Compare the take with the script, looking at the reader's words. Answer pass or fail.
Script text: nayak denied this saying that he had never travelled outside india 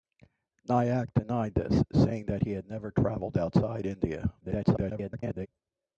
fail